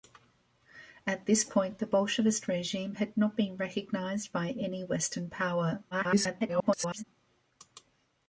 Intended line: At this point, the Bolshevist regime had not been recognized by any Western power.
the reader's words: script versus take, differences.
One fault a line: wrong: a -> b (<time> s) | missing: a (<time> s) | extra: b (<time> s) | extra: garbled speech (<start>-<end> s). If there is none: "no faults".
extra: garbled speech (5.9-7.0 s)